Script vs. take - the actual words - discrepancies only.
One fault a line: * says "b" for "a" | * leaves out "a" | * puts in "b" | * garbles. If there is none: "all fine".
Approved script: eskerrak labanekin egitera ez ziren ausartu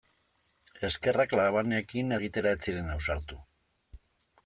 all fine